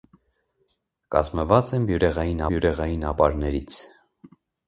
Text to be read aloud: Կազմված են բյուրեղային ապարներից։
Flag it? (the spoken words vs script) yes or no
yes